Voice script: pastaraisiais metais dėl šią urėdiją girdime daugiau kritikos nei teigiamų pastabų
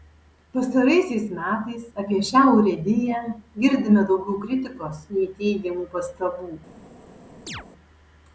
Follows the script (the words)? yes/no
no